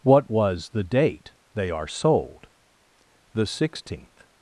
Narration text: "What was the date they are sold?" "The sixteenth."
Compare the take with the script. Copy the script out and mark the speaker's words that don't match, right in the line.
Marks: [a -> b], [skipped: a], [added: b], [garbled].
"What was the date they are sold?" "The sixteenth."